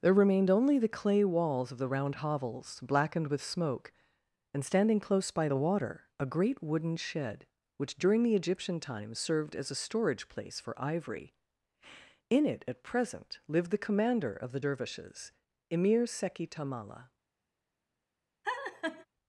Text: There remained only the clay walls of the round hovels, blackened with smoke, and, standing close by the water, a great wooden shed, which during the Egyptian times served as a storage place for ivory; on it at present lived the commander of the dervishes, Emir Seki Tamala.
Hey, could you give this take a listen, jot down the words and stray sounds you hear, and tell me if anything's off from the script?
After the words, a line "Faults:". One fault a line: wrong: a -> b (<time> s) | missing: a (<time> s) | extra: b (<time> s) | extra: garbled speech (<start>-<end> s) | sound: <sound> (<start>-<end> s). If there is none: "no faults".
There remained only the clay walls of the round hovels, blackened with smoke, and, standing close by the water, a great wooden shed, which during the Egyptian times served as a storage place for ivory; in it at present lived the commander of the dervishes, Emir Seki Tamala.
Faults:
wrong: on -> in (12.3 s)
sound: laugh (18.4-19.1 s)